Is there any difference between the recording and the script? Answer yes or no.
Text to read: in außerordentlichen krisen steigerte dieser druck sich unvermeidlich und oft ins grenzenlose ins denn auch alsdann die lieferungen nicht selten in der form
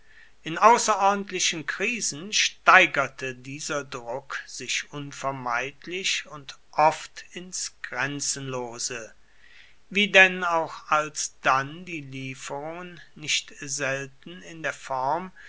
yes